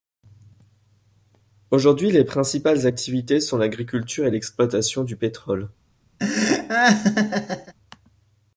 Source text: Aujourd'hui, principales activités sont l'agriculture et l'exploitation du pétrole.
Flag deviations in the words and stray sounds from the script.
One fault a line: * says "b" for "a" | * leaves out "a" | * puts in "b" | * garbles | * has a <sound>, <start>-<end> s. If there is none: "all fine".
* puts in "les"
* has a laugh, 6.2-7.7 s